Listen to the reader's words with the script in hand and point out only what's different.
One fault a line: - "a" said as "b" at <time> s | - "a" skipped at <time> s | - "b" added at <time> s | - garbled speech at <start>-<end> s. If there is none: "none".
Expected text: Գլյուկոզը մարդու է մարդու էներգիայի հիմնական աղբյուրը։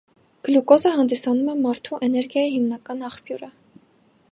- "մարդու" said as "հանդիսանում" at 0.9 s